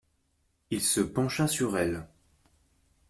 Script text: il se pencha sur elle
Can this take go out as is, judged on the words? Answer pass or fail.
pass